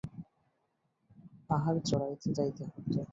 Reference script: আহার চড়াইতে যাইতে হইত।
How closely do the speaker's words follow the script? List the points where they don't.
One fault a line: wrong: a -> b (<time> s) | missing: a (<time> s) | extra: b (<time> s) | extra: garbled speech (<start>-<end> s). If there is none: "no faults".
no faults